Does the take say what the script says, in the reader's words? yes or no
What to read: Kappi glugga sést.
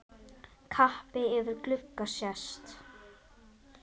no